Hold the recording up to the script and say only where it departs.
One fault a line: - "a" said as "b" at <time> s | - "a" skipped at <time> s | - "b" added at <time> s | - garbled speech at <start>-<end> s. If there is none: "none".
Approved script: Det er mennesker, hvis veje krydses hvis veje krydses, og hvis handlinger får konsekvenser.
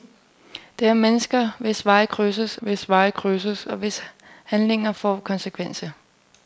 none